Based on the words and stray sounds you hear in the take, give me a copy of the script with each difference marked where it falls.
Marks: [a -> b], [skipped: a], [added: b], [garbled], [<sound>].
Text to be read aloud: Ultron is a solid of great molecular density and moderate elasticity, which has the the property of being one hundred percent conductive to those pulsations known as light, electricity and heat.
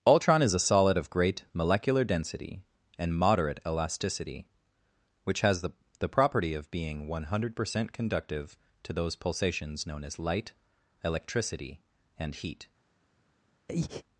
Ultron is a solid of great molecular density and moderate elasticity, which has the the property of being one hundred percent conductive to those pulsations known as light, electricity and heat. [breath]